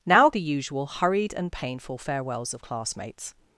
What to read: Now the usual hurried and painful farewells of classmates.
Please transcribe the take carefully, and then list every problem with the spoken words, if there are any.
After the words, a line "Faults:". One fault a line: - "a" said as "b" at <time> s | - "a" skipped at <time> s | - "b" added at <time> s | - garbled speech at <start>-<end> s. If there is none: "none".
Now the usual hurried and painful farewells of classmates.
Faults:
none